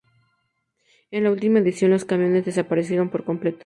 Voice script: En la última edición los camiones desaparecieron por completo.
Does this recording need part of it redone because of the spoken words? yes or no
no